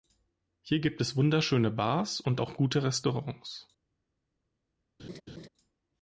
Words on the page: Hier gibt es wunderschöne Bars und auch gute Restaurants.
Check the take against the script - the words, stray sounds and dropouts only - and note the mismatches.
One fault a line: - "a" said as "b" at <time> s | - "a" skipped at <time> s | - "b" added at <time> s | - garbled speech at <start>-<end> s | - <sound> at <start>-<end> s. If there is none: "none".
- laugh at 5.0-5.5 s